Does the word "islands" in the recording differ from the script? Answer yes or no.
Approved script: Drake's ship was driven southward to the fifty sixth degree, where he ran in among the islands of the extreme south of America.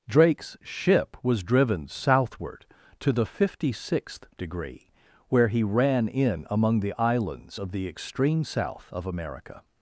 no